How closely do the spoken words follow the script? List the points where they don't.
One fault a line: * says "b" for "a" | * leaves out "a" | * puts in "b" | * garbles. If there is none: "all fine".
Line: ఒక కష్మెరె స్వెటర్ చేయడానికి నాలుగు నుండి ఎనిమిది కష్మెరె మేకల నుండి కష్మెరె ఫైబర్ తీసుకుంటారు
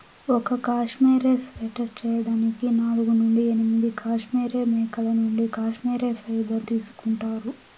all fine